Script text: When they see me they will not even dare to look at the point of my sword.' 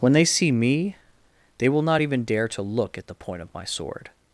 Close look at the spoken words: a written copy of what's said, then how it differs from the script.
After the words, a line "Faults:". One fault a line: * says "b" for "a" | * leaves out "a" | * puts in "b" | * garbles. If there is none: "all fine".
When they see me they will not even dare to look at the point of my sword.'
Faults:
all fine